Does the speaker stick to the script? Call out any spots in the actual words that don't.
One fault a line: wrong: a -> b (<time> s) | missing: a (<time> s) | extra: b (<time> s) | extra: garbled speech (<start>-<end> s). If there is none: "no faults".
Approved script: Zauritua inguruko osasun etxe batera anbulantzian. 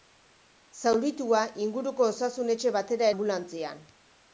no faults